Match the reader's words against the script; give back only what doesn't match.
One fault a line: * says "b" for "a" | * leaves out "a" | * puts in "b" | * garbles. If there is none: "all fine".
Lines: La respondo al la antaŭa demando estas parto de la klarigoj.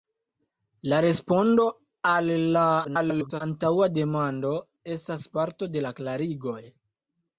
* garbles